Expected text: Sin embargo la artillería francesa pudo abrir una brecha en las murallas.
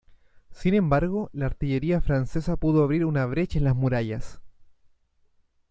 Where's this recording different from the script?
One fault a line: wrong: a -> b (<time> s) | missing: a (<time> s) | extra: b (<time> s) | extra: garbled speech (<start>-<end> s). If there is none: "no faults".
no faults